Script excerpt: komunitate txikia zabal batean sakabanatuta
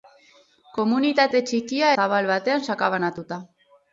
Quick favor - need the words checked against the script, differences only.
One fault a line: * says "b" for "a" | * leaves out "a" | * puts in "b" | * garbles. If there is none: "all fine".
all fine